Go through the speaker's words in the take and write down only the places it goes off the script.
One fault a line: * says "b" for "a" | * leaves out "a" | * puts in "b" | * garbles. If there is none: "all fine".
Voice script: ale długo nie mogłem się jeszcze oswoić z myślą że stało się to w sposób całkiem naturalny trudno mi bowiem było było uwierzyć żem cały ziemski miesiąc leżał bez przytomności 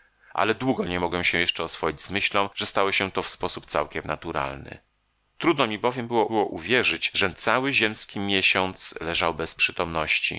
all fine